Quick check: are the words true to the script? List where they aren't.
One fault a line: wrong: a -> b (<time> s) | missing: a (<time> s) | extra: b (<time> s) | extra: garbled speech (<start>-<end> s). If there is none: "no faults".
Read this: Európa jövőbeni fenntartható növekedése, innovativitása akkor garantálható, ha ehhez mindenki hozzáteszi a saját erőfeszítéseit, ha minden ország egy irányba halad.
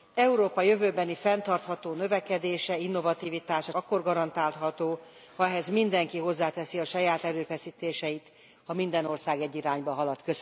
no faults